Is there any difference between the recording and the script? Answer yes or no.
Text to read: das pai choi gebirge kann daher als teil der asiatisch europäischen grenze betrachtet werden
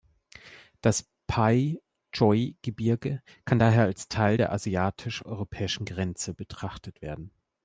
no